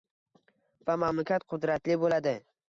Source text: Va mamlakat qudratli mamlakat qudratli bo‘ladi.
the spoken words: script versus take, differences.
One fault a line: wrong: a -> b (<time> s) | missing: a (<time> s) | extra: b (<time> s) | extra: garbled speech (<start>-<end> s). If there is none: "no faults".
missing: mamlakat qudratli (2.0 s)